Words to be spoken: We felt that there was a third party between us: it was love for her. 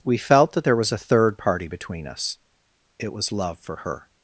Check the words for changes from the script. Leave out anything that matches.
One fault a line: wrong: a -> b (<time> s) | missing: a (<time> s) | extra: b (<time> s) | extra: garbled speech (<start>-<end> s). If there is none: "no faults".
no faults